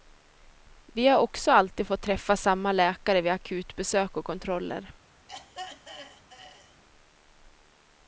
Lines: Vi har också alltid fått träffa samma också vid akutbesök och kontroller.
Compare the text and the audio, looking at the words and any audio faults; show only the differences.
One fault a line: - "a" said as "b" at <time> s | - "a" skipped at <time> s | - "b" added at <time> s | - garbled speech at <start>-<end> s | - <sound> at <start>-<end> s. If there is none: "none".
- "också" said as "läkare" at 2.7 s
- throat clearing at 5.3-6.8 s